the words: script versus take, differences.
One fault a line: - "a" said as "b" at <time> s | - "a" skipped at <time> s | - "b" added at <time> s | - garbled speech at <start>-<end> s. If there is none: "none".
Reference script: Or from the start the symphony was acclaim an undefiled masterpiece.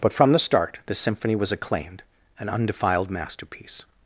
- "Or" said as "But" at 0.0 s
- "acclaim" said as "acclaimed" at 1.5 s